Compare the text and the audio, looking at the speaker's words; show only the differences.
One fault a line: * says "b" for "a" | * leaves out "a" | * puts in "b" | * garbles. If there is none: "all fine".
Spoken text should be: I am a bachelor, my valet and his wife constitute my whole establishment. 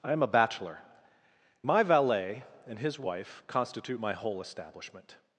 all fine